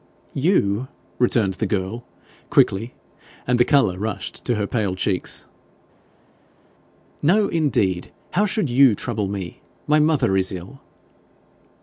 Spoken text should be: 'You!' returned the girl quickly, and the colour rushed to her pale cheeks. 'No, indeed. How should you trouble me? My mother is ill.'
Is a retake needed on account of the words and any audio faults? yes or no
no